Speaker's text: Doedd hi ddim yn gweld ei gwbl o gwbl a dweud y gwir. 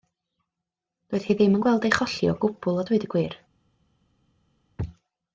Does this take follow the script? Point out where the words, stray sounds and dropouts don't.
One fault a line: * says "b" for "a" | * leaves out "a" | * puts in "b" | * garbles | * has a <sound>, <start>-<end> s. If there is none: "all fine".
* says "cholli" for "gwbl"